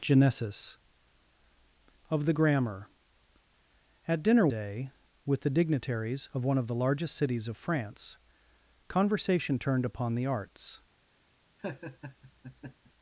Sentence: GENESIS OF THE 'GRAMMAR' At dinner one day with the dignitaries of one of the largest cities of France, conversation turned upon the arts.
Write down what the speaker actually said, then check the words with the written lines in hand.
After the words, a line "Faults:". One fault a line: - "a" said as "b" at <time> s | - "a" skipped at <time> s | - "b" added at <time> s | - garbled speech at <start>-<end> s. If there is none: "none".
GENESIS OF THE 'GRAMMAR' At dinner day with the dignitaries of one of the largest cities of France, conversation turned upon the arts.
Faults:
- "one" skipped at 4.5 s